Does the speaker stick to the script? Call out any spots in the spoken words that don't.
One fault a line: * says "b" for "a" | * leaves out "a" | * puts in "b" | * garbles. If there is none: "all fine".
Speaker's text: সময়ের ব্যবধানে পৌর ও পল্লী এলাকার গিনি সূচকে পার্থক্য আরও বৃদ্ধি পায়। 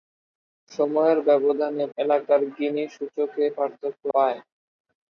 * leaves out "পৌর ও পল্লী"
* leaves out "আরও বৃদ্ধি"